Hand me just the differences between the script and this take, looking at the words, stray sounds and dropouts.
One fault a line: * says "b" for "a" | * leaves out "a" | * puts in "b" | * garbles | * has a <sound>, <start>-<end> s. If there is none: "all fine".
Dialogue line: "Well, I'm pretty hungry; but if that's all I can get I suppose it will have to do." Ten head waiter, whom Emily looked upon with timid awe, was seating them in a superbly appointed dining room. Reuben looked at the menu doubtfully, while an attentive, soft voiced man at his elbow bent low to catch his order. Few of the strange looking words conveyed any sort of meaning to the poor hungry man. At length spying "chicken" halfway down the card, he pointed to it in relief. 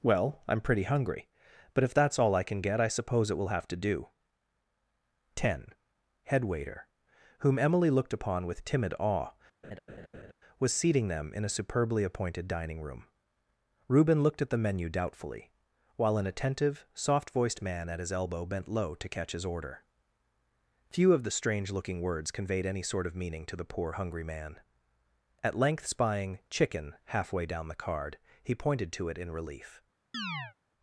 * has a laugh, 9.6-10.3 s
* has a chirp, 30.1-30.5 s